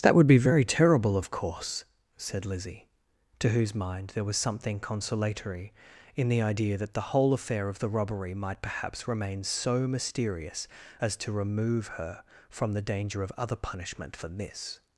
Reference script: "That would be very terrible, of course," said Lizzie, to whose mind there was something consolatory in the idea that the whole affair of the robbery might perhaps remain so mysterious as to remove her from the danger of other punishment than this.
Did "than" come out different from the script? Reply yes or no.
yes